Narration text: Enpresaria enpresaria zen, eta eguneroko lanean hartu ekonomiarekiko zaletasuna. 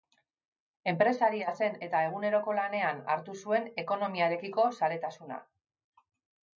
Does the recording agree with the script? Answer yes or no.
no